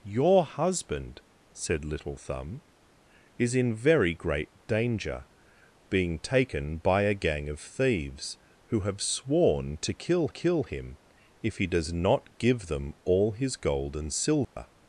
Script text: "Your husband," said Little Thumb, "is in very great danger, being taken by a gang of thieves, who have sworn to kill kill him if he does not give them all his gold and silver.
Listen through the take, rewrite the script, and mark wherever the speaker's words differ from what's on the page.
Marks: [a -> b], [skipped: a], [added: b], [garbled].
"Your husband," said Little Thumb, "is in very great danger, being taken by a gang of thieves, who have sworn to kill kill him if he does not give them all his gold and silver.